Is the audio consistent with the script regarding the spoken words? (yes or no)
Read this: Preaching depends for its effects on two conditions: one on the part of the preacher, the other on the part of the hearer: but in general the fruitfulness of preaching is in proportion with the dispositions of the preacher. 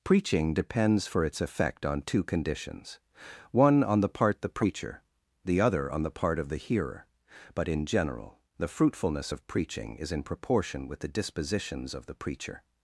no